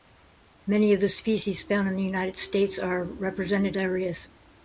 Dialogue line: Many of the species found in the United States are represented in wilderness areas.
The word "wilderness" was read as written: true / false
false